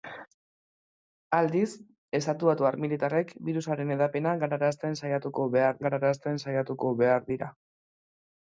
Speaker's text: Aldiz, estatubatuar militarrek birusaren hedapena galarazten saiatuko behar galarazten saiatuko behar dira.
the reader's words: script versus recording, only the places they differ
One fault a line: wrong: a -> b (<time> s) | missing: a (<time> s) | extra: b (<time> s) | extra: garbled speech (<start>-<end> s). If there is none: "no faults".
no faults